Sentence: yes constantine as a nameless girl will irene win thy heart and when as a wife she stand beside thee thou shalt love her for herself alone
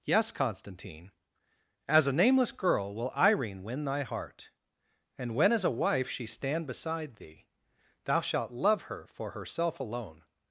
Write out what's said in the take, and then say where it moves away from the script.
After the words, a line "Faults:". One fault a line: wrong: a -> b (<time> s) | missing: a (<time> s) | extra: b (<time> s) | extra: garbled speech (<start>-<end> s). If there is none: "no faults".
yes constantine as a nameless girl will irene win thy heart and when as a wife she stand beside thee thou shalt love her for herself alone
Faults:
no faults